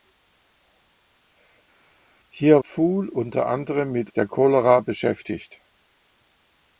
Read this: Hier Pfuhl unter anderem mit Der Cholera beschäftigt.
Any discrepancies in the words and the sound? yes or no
no